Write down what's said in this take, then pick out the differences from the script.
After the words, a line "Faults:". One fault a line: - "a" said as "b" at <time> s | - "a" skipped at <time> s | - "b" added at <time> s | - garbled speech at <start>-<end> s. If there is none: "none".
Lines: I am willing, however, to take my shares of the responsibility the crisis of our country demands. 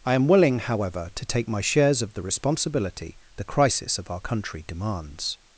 I am willing, however, to take my shares of the responsibility the crisis of our country demands.
Faults:
none